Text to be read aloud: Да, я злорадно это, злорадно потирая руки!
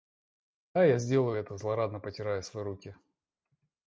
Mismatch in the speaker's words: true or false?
true